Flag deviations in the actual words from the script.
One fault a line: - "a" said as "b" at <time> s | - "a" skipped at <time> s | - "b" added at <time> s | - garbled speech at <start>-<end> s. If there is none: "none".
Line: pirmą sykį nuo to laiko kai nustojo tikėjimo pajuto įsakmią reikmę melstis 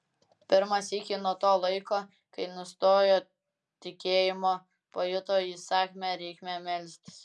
none